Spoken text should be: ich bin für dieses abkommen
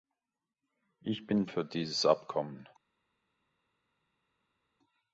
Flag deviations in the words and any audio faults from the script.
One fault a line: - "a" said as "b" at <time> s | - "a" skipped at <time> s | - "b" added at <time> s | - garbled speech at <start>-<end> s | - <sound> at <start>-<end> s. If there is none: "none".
none